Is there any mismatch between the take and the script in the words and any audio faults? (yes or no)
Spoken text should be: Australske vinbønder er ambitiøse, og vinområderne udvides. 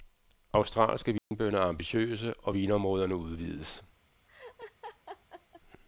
yes